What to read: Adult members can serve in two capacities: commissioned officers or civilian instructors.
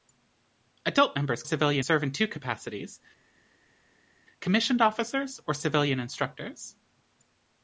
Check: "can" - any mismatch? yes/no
yes